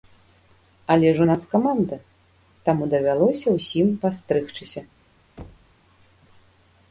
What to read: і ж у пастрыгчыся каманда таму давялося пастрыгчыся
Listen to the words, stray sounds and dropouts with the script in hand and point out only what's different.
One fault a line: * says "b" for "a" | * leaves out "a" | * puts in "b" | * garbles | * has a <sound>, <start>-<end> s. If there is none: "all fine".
* says "але" for "і"
* says "нас" for "пастрыгчыся"
* puts in "ўсім"
* has a thud, 5.4-5.8 s